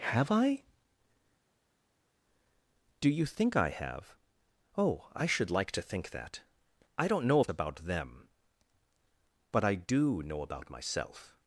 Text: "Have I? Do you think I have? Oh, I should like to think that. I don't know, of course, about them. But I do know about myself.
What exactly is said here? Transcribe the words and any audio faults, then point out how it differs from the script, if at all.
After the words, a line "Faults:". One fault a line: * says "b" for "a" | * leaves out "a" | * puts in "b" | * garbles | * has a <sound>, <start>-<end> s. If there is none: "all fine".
"Have I? Do you think I have? Oh, I should like to think that. I don't know, of about them. But I do know about myself.
Faults:
* leaves out "course"